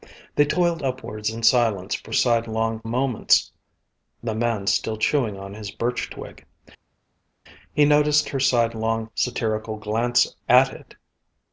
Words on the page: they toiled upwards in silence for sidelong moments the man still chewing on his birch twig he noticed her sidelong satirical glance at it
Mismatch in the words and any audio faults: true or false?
false